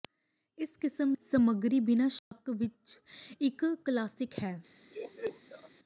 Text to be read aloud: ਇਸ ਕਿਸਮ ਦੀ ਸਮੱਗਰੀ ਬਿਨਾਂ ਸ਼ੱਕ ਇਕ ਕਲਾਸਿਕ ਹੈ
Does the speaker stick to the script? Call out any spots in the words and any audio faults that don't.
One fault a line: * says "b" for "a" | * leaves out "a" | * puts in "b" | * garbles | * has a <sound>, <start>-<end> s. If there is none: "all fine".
* leaves out "ਦੀ"
* has a dropout, 2.2-2.3 s
* has a laugh, 4.9-5.7 s